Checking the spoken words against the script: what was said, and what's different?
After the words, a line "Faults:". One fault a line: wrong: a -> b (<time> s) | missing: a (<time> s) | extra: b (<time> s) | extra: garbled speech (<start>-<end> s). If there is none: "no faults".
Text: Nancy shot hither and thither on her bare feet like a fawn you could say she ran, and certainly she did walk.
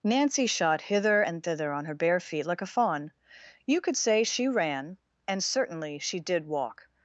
Nancy shot hither and thither on her bare feet like a fawn you could say she ran, and certainly she did walk.
Faults:
no faults